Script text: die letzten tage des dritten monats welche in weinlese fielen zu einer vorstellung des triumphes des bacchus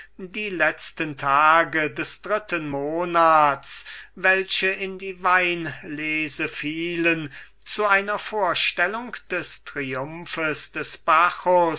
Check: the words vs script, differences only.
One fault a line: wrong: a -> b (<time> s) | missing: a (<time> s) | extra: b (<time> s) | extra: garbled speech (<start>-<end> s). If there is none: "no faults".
extra: die (5.0 s)